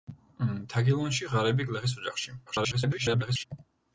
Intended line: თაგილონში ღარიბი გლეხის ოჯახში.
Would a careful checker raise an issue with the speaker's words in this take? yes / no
yes